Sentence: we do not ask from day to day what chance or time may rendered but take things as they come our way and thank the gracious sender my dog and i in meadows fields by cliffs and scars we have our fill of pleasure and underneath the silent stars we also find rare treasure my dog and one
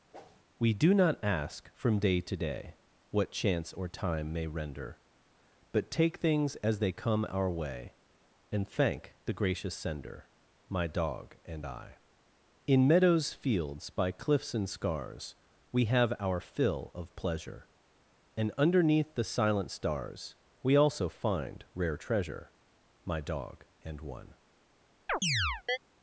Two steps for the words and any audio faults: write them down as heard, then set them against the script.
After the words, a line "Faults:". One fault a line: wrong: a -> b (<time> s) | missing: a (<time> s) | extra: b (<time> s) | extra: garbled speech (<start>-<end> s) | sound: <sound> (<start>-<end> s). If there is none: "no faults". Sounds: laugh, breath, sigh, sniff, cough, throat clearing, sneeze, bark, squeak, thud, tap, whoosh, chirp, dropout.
we do not ask from day to day what chance or time may render but take things as they come our way and thank the gracious sender my dog and i in meadows fields by cliffs and scars we have our fill of pleasure and underneath the silent stars we also find rare treasure my dog and one
Faults:
sound: whoosh (0.1-0.4 s)
wrong: rendered -> render (4.5 s)
sound: chirp (25.1-25.8 s)